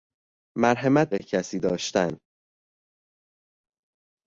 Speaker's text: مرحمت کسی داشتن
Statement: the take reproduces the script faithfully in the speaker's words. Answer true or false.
true